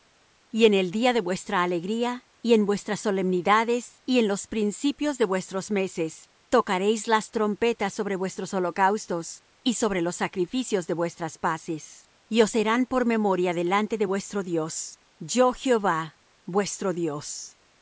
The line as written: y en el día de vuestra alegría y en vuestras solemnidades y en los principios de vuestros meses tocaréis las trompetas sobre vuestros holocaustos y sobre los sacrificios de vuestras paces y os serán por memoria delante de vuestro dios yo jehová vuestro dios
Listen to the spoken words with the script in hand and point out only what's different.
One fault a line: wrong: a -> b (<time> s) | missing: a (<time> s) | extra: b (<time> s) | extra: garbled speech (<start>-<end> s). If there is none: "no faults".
no faults